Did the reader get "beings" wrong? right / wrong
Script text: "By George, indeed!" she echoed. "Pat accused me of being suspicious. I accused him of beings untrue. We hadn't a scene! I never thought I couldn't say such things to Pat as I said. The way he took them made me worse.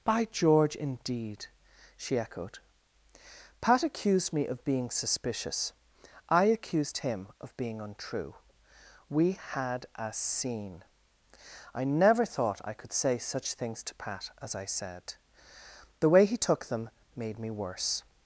wrong